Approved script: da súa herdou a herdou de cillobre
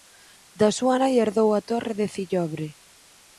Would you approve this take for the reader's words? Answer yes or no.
no